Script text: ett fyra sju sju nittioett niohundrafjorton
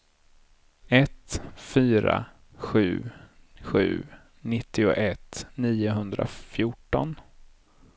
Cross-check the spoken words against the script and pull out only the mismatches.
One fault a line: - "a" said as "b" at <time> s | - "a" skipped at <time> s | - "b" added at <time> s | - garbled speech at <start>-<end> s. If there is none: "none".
none